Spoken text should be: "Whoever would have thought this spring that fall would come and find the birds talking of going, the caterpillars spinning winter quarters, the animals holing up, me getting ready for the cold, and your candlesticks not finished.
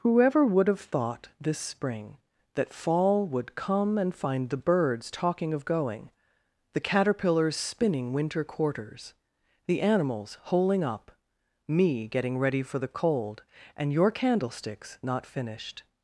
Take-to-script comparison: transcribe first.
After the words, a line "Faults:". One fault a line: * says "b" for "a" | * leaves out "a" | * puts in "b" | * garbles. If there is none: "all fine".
"Whoever would have thought this spring that fall would come and find the birds talking of going, the caterpillars spinning winter quarters, the animals holing up, me getting ready for the cold, and your candlesticks not finished.
Faults:
all fine